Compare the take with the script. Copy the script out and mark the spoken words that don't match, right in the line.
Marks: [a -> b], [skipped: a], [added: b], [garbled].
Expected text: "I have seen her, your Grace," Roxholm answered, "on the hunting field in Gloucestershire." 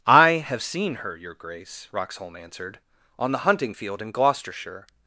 "I have seen her, your Grace," Roxholm answered, "on the hunting field in Gloucestershire."